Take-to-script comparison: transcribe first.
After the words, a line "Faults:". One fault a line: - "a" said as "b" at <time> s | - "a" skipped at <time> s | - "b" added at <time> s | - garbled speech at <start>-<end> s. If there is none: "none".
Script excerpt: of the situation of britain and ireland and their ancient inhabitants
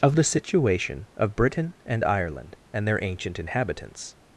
of the situation of britain and ireland and their ancient inhabitants
Faults:
none